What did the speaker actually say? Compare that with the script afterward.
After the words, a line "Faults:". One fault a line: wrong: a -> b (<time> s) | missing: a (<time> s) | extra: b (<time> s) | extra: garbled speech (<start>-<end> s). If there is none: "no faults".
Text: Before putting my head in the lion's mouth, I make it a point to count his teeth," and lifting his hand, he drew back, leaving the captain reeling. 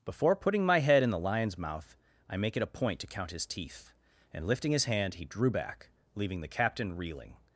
Before putting my head in the lion's mouth, I make it a point to count his teeth," and lifting his hand, he drew back, leaving the captain reeling.
Faults:
no faults